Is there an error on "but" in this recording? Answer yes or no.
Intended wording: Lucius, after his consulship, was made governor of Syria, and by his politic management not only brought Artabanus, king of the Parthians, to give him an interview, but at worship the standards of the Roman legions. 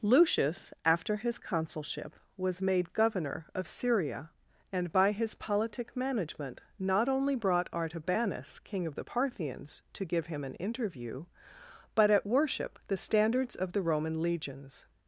no